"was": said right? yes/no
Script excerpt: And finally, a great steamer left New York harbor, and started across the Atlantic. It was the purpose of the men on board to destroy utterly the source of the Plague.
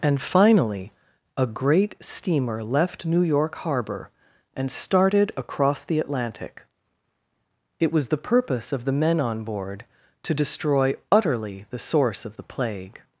yes